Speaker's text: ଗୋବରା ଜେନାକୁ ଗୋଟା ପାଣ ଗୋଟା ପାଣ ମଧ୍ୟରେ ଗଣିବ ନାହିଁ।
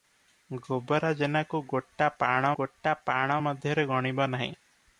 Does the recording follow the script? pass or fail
pass